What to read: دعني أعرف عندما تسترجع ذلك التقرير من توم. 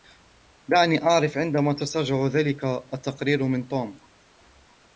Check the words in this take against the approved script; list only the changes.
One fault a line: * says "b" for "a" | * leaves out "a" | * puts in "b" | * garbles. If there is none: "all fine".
all fine